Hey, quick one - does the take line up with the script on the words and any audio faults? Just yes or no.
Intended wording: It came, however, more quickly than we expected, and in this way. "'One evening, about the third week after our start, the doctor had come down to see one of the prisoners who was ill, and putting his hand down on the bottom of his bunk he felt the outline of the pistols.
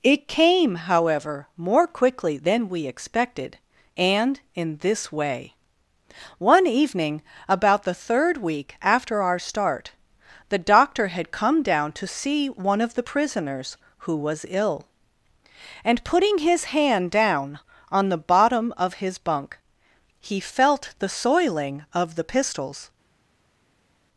no